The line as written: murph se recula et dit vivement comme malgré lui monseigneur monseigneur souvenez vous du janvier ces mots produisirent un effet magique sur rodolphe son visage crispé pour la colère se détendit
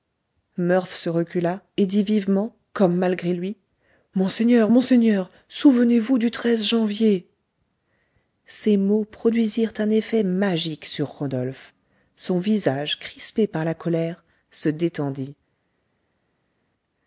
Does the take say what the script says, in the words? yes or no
no